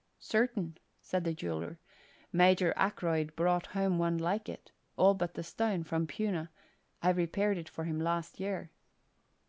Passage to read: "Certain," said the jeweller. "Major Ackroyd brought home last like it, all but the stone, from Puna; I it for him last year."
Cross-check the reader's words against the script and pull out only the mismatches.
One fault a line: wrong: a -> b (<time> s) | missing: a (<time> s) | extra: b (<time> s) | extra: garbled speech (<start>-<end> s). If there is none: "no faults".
wrong: last -> one (4.0 s)
extra: repaired (7.1 s)